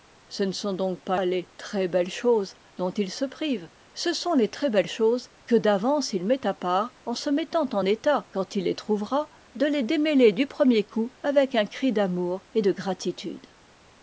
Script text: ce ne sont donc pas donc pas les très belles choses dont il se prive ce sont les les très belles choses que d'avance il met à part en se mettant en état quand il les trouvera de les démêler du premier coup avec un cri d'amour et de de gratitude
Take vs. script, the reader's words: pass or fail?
fail